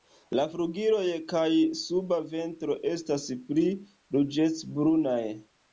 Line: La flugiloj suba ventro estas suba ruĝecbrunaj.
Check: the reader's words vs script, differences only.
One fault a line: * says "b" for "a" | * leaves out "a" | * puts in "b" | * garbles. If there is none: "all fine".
* puts in "kaj"
* says "pli" for "suba"